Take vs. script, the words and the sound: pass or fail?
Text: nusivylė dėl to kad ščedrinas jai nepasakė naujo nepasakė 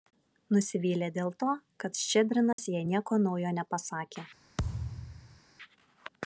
fail